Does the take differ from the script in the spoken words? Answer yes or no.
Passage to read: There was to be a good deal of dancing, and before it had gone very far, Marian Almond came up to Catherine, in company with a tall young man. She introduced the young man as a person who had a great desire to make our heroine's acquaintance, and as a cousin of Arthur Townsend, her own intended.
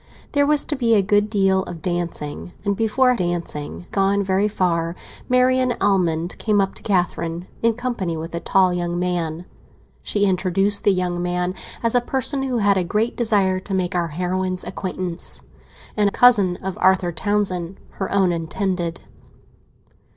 yes